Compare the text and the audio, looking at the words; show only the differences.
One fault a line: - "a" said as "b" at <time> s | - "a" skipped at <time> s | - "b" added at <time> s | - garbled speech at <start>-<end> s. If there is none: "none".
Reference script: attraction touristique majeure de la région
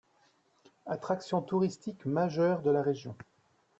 none